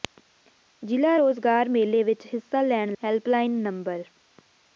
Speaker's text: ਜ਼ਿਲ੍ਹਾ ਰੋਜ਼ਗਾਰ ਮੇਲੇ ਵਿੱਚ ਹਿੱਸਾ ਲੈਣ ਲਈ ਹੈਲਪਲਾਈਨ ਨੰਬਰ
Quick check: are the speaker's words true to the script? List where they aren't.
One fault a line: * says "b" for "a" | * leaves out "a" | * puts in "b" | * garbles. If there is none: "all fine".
* leaves out "ਲਈ"